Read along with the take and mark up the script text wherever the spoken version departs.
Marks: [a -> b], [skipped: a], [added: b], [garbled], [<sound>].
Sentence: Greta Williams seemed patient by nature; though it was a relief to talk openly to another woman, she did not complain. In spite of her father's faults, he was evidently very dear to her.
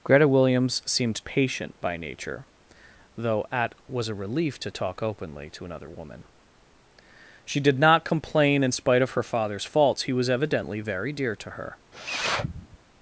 Greta Williams seemed patient by nature; though [it -> at] was a relief to talk openly to another woman, she did not complain. In spite of her father's faults, he was evidently very dear to her. [sniff]